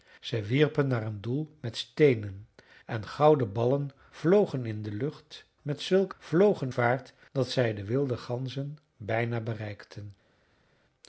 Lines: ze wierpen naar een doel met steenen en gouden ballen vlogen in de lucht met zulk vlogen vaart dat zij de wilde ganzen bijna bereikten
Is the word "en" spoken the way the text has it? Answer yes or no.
yes